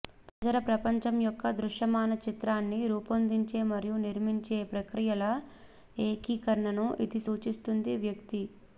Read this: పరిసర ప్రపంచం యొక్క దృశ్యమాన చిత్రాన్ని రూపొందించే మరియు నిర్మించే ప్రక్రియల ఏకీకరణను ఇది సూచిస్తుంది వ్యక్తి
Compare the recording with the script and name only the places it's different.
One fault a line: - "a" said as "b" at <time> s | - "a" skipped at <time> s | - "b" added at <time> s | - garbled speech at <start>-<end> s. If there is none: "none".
none